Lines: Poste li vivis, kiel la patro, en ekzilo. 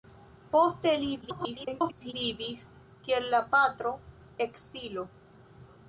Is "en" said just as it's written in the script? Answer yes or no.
no